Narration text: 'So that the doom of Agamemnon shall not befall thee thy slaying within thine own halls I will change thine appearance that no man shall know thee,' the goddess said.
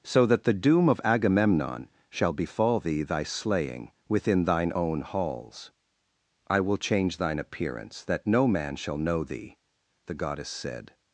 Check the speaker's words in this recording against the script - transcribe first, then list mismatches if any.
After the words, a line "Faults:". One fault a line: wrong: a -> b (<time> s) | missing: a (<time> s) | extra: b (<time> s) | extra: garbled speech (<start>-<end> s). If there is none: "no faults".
'So that the doom of Agamemnon shall befall thee thy slaying within thine own halls I will change thine appearance that no man shall know thee,' the goddess said.
Faults:
missing: not (2.3 s)